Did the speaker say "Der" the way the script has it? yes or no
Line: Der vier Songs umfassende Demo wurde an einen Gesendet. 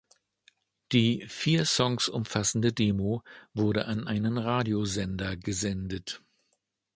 no